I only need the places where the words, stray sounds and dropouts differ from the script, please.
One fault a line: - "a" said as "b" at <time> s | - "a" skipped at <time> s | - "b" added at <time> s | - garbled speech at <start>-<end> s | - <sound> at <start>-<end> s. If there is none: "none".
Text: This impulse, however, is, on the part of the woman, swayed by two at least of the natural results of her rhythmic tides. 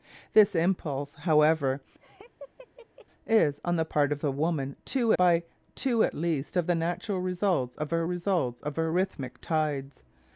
- laugh at 2.0-3.1 s
- "swayed" said as "two" at 4.8 s
- "results of her" added at 8.0 s